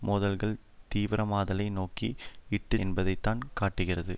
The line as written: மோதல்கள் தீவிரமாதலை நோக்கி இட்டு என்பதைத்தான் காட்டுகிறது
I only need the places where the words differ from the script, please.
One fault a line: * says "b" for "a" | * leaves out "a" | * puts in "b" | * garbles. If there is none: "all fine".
all fine